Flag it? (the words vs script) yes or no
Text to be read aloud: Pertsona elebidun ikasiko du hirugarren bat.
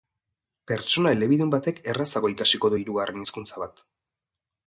yes